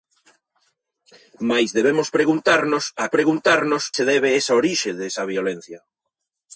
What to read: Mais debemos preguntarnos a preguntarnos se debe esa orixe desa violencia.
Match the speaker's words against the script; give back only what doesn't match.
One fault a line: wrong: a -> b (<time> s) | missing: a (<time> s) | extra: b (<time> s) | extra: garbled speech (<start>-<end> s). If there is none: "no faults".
no faults